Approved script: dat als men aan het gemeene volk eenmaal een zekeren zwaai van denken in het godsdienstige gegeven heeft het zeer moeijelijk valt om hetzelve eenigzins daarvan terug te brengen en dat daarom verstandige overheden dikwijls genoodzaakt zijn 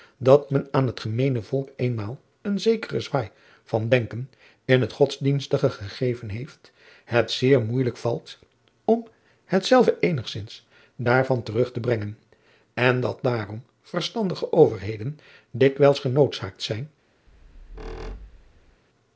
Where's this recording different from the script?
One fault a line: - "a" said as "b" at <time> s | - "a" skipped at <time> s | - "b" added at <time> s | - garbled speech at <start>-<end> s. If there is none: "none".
- "als" skipped at 0.5 s